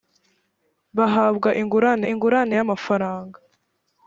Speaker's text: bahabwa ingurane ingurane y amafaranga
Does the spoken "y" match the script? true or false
true